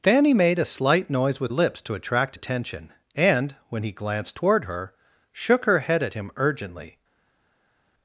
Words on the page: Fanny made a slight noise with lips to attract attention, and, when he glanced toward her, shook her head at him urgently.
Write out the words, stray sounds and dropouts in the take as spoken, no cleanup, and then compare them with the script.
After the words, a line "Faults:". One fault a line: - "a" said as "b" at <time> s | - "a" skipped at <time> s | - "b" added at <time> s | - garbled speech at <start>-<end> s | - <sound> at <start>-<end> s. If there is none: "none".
Fanny made a slight noise with lips to attract attention, and, when he glanced toward her, shook her head at him urgently.
Faults:
none